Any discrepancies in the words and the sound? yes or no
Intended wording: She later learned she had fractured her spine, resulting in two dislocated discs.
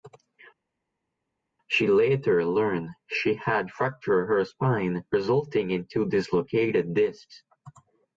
no